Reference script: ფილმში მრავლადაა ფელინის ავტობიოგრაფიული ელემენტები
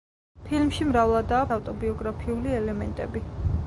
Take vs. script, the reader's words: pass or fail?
fail